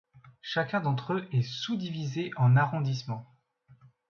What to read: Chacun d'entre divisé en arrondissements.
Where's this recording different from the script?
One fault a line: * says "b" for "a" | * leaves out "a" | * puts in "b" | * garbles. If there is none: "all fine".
* puts in "eux est sous"